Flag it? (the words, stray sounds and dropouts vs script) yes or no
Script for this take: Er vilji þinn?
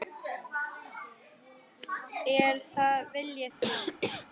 yes